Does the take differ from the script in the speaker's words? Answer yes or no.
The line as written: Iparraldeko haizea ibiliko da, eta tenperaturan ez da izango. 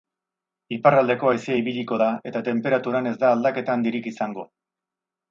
yes